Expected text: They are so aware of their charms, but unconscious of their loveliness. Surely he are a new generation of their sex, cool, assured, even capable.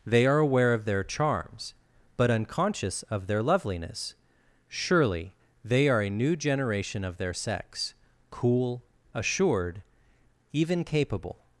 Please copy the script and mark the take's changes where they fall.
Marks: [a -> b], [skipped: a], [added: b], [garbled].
They are [skipped: so] aware of their charms, but unconscious of their loveliness. Surely [he -> they] are a new generation of their sex, cool, assured, even capable.